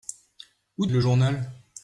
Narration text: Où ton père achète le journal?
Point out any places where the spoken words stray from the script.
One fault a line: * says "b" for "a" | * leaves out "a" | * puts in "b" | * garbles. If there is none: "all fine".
* leaves out "ton père achète"